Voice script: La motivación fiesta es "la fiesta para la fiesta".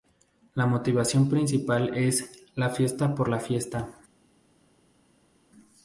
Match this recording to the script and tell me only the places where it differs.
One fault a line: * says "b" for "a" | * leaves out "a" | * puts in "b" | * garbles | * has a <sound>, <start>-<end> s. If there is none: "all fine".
* says "principal" for "fiesta"
* says "por" for "para"